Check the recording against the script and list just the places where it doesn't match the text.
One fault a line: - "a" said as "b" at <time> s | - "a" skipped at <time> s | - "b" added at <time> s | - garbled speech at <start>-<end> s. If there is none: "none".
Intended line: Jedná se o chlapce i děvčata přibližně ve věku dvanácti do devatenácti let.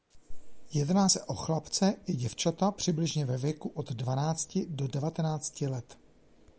- "od" added at 3.7 s